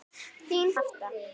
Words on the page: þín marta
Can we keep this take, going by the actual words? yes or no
yes